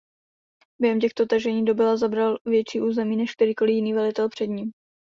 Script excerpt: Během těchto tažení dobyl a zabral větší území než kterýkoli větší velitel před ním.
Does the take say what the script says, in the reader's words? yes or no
no